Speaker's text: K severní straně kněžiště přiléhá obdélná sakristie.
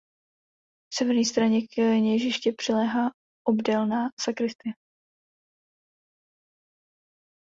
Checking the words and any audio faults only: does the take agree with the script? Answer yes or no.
yes